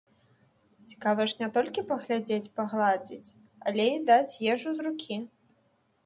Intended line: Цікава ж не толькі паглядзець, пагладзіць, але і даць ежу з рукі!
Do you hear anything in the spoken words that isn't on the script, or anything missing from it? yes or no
no